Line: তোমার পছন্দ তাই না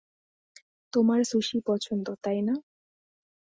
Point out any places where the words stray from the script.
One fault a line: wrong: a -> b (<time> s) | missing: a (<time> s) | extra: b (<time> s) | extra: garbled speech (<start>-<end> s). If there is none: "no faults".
extra: সুশি (1.3 s)